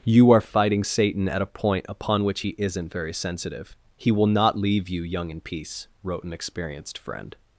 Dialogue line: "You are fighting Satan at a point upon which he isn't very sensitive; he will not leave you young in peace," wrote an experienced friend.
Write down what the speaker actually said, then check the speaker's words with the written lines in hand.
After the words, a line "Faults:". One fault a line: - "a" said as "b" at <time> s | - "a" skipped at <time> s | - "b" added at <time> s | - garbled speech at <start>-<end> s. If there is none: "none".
"You are fighting Satan at a point upon which he isn't very sensitive; he will not leave you young in peace," wrote an experienced friend.
Faults:
none